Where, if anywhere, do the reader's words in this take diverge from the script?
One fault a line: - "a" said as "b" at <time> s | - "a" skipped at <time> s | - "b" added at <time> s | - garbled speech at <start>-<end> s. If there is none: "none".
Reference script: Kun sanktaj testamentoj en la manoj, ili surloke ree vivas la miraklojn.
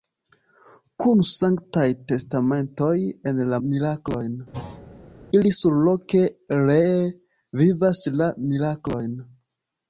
- "manoj" said as "miraklojn" at 3.7 s